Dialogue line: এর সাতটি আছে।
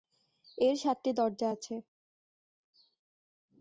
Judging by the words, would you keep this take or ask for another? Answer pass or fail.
fail